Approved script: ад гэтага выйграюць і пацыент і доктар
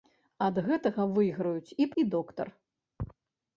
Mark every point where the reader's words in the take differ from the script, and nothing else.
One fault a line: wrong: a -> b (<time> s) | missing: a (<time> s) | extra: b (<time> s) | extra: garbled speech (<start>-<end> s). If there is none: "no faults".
missing: пацыент (1.9 s)